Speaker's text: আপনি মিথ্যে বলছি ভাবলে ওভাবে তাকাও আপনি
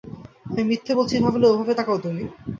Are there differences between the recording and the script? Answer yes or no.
yes